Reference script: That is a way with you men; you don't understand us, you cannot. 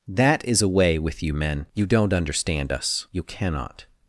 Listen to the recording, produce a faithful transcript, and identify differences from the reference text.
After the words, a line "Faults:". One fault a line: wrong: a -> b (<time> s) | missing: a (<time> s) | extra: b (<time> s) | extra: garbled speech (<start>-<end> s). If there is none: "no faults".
That is a way with you men; you don't understand us, you cannot.
Faults:
no faults